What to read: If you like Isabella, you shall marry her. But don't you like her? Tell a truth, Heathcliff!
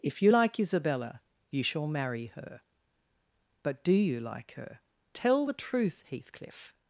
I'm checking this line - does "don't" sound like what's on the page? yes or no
no